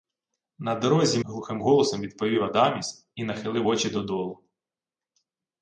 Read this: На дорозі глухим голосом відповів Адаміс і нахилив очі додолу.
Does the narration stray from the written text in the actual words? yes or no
no